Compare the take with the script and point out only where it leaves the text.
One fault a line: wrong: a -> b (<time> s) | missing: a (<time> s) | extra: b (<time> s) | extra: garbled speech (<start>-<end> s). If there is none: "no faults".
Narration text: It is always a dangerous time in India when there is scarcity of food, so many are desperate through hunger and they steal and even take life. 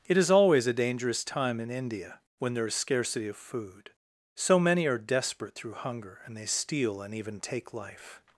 no faults